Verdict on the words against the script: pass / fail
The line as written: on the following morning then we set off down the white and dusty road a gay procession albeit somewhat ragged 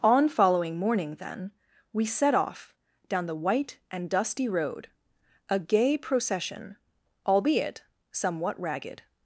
fail